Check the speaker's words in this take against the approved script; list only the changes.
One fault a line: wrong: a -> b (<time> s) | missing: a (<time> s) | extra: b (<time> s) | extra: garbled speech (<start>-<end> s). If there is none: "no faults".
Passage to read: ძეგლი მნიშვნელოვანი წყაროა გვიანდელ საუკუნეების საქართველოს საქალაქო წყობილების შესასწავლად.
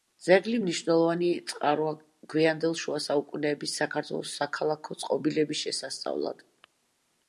extra: შუა (2.8 s)